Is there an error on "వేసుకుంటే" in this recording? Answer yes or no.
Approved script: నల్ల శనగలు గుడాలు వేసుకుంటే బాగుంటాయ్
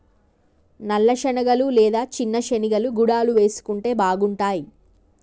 no